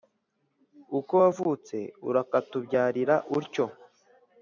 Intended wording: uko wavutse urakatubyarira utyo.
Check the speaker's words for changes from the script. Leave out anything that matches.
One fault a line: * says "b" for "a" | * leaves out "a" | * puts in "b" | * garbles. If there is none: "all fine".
all fine